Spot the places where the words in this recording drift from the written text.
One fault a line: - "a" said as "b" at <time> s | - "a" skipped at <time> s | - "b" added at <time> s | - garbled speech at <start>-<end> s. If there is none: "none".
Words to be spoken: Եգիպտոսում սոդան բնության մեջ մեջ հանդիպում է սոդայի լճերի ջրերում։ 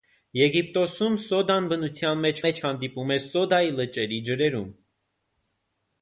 none